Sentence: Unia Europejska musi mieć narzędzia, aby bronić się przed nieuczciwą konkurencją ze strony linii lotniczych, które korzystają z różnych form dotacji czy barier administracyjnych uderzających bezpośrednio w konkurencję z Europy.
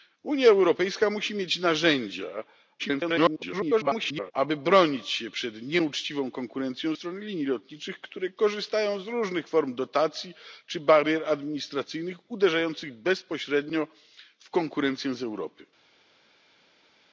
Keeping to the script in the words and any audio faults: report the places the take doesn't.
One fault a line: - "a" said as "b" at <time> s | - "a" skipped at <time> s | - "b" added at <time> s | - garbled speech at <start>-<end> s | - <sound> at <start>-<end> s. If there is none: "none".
- garbled speech at 2.8-4.3 s
- "ze" skipped at 6.9 s